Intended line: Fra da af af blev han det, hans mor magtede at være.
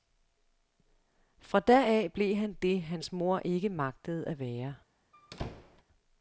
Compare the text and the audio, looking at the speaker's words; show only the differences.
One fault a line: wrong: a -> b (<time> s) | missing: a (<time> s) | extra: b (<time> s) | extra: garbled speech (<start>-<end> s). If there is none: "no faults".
missing: af (2.1 s)
extra: ikke (3.4 s)